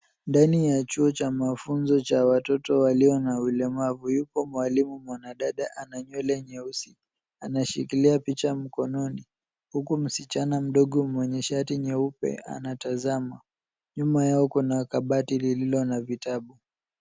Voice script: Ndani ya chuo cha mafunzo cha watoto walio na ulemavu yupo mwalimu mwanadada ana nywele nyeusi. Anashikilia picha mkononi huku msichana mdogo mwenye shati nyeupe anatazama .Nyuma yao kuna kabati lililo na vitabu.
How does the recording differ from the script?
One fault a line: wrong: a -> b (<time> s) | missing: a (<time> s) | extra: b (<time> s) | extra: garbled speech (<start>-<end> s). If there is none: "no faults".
no faults